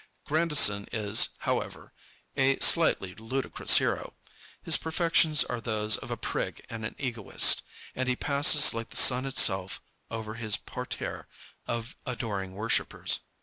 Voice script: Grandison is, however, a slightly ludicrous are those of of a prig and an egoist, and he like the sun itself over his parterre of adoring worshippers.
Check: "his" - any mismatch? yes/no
no